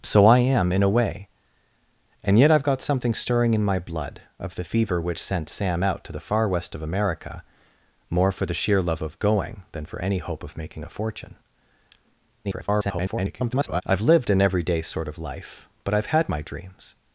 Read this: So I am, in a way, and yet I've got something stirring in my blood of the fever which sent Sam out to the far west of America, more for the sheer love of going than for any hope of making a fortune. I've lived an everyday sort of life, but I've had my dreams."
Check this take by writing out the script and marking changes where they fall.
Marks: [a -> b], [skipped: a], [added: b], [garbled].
So I am, in a way, and yet I've got something stirring in my blood of the fever which sent Sam out to the far west of America, more for the sheer love of going than for any hope of making a fortune. [garbled] I've lived an everyday sort of life, but I've had my dreams."